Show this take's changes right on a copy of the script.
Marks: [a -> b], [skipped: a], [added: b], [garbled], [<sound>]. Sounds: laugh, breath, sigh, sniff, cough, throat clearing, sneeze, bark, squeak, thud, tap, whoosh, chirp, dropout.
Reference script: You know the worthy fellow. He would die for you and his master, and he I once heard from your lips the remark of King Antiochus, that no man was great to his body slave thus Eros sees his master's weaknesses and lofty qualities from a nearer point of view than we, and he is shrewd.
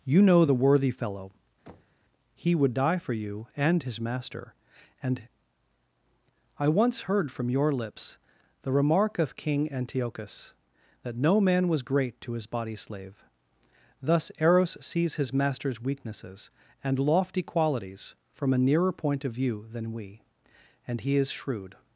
You know the worthy fellow. [thud] He would die for you and his master, and [skipped: he] I once heard from your lips the remark of King Antiochus, that no man was great to his body slave thus Eros sees his master's weaknesses and lofty qualities from a nearer point of view than we, and he is shrewd.